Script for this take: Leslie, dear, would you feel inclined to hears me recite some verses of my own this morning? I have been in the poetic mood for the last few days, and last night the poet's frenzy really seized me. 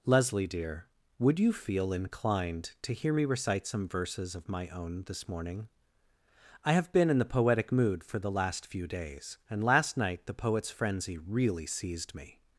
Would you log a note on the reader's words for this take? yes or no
yes